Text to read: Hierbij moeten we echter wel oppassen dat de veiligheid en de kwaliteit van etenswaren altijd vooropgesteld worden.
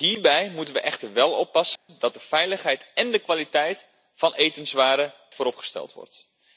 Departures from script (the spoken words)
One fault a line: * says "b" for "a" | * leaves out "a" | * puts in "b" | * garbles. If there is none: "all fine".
* leaves out "altijd"